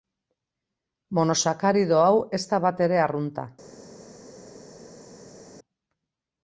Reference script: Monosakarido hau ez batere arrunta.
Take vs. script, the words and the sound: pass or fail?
fail